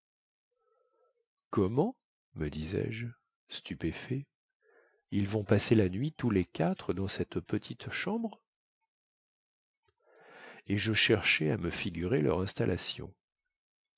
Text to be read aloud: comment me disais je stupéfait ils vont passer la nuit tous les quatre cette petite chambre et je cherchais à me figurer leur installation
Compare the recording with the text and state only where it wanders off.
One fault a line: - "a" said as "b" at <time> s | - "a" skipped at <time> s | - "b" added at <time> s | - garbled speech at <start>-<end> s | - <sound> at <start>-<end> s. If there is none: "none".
- "dans" added at 7.0 s